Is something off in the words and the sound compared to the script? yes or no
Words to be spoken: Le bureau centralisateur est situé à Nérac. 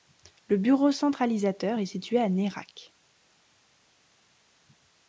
no